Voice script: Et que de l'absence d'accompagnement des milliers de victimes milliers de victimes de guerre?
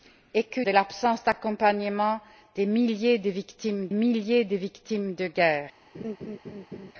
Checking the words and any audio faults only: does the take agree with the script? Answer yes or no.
no